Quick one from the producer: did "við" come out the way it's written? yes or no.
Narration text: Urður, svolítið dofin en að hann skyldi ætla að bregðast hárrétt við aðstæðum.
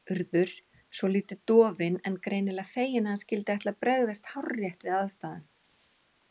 yes